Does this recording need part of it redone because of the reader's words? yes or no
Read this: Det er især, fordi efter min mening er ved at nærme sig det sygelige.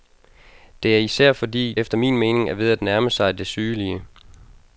no